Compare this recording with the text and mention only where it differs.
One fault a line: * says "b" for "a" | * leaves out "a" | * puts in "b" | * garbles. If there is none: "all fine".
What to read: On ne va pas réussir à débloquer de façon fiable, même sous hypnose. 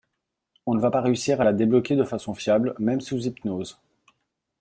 * puts in "la"